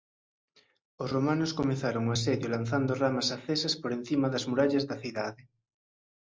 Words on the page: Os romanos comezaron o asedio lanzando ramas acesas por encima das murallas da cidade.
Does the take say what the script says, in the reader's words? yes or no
yes